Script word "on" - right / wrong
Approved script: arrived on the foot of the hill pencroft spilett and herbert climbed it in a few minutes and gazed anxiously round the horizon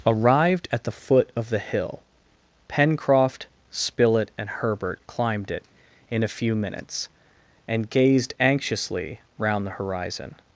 wrong